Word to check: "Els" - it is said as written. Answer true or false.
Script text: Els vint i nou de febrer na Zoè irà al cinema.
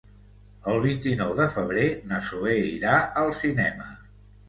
false